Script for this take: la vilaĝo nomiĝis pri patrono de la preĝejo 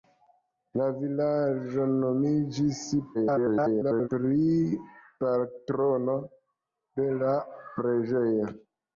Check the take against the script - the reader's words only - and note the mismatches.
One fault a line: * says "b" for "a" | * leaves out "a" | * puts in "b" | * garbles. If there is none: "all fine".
* garbles